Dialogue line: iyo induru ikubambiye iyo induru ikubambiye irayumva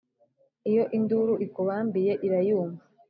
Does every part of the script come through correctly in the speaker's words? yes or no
no